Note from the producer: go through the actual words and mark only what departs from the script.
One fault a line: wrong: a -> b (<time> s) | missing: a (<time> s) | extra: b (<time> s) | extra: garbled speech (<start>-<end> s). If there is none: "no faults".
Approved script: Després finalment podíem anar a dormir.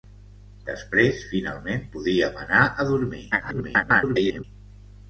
extra: garbled speech (3.3-4.4 s)